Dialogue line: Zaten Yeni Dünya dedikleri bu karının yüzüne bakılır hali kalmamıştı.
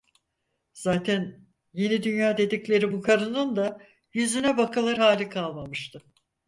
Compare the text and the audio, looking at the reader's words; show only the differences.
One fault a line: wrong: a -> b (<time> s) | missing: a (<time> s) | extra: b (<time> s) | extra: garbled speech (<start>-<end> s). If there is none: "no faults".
extra: da (3.6 s)